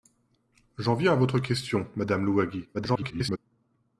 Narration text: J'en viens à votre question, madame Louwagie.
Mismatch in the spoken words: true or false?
true